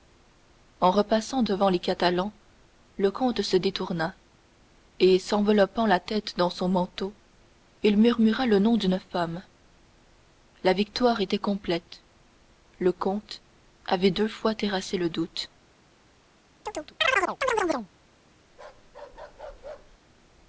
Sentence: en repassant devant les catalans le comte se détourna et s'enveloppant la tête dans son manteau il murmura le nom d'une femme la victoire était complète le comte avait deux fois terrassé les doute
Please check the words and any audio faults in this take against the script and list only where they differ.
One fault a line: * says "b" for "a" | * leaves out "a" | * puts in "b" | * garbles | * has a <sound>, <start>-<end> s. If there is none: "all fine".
* says "le" for "les"
* has a chirp, 16.7-17.9 s
* has a bark, 18.5-20.0 s